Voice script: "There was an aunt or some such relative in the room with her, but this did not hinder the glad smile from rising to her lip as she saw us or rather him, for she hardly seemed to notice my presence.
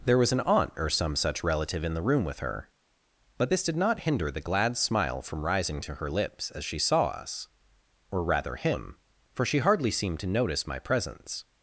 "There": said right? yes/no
yes